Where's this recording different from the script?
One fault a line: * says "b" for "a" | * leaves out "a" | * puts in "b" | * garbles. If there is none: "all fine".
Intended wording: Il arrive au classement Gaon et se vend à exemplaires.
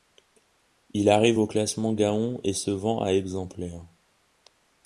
all fine